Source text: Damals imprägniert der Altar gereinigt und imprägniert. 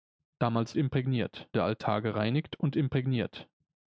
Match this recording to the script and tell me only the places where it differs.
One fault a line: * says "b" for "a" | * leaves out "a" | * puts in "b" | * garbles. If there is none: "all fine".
all fine